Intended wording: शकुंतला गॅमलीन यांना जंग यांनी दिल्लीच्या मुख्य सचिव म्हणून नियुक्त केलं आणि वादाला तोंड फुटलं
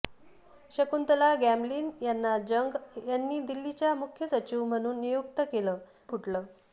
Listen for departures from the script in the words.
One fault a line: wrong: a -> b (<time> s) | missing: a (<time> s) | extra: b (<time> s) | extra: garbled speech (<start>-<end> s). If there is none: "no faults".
missing: आणि वादाला तोंड (5.8 s)